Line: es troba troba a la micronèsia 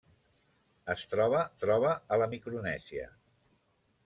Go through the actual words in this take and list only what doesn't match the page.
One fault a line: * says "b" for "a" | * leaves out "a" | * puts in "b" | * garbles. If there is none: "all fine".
all fine